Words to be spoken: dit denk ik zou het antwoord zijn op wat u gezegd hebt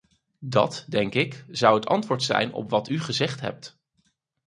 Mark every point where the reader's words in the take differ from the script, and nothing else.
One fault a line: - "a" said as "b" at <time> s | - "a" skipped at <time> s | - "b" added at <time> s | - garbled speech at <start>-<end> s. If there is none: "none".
- "dit" said as "dat" at 0.4 s